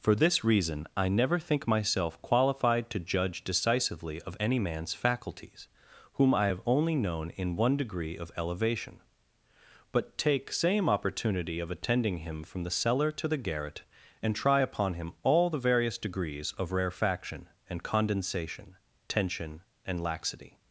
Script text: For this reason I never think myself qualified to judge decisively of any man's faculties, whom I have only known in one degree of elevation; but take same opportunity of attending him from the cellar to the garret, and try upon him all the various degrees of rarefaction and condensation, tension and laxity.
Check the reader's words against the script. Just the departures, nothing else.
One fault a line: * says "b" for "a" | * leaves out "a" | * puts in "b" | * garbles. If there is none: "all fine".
all fine